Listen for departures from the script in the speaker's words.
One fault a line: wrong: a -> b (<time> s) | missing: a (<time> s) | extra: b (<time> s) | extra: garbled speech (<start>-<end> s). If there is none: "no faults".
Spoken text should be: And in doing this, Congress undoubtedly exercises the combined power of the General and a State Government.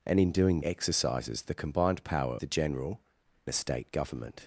missing: this Congress undoubtedly (0.6 s)
missing: of (2.4 s)
missing: and (3.0 s)